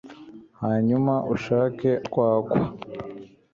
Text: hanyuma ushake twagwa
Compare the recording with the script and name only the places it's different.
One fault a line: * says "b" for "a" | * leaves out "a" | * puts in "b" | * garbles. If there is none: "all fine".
all fine